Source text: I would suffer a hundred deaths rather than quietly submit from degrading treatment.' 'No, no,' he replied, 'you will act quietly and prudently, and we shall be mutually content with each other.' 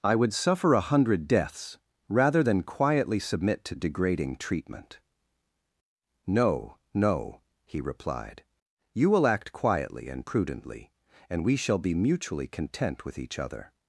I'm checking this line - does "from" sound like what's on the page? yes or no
no